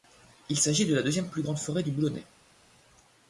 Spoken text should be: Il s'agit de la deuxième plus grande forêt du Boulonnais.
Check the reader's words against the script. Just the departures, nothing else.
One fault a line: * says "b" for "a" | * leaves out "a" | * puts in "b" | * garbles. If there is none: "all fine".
all fine